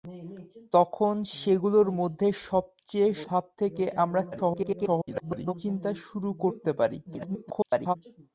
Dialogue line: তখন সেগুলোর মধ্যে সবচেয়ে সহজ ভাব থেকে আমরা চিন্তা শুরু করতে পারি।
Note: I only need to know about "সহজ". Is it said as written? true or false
false